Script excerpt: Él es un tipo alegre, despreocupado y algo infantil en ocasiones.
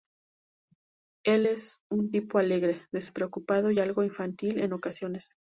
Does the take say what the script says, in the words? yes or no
yes